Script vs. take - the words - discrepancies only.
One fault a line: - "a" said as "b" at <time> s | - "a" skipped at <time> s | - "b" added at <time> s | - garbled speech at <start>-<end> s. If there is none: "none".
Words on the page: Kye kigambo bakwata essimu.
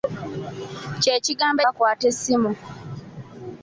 none